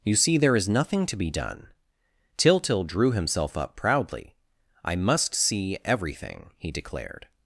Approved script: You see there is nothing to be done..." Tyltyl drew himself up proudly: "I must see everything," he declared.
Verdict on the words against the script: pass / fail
pass